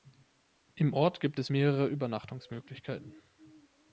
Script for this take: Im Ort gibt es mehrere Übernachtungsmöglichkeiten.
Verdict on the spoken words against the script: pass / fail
pass